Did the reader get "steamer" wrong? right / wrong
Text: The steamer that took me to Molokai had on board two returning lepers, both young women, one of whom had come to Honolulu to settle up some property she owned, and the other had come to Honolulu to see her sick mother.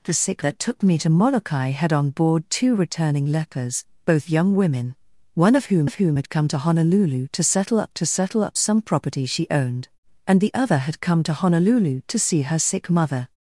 wrong